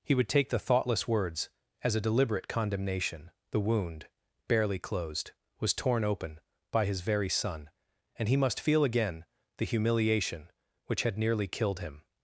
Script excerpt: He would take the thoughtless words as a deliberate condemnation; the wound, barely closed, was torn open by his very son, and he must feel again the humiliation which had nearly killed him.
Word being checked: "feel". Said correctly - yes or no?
yes